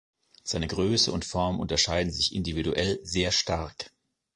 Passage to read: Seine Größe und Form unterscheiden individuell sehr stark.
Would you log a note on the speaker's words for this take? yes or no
yes